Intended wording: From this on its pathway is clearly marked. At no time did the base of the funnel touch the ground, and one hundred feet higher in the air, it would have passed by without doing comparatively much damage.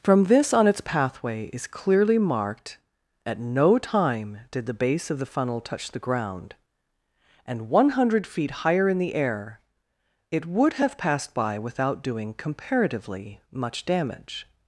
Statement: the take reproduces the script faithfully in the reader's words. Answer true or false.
true